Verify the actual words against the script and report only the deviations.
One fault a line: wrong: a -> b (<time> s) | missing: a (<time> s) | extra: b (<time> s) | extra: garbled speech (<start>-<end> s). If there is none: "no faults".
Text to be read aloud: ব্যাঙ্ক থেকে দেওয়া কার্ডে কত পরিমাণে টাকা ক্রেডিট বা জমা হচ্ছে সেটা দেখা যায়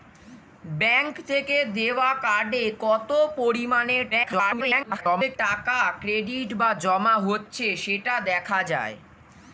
extra: garbled speech (4.1-5.4 s)